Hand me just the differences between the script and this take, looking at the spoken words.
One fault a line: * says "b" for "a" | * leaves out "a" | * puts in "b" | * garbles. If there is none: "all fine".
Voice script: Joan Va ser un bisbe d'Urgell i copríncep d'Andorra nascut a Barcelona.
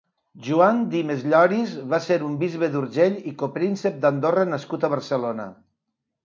* puts in "Dimes Lloris"